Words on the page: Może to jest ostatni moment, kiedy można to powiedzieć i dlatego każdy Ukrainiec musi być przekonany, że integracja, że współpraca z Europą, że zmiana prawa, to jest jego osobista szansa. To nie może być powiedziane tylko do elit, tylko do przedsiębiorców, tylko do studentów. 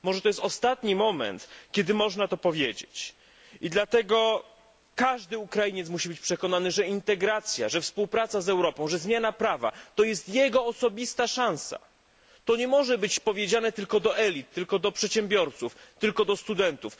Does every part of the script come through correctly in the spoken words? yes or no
yes